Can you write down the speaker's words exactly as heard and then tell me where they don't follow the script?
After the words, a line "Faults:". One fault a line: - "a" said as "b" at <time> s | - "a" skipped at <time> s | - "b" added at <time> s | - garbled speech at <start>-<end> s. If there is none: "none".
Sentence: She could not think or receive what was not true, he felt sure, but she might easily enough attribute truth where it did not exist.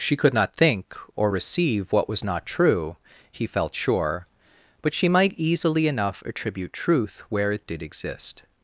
She could not think or receive what was not true, he felt sure, but she might easily enough attribute truth where it did exist.
Faults:
- "not" skipped at 7.8 s